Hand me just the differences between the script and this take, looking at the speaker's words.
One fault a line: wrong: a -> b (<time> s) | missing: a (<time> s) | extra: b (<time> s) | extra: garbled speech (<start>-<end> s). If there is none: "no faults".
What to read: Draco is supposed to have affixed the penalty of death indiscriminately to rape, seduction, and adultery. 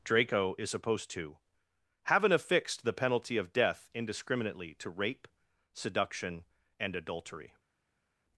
wrong: have -> haven't (2.1 s)